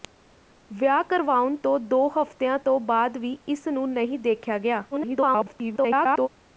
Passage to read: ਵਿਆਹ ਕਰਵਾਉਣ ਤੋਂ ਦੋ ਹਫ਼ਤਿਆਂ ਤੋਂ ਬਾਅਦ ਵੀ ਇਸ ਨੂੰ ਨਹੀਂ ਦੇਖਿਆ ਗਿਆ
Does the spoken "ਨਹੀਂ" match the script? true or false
true